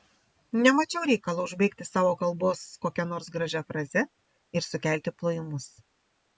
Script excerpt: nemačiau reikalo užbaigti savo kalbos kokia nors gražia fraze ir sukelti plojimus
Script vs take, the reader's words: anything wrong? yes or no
no